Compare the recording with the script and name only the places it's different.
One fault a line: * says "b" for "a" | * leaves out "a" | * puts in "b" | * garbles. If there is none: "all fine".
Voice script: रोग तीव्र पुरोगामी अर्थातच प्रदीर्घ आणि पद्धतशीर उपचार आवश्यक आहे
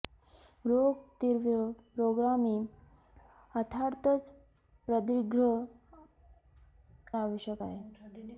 * leaves out "आणि पद्धतशीर उपचार"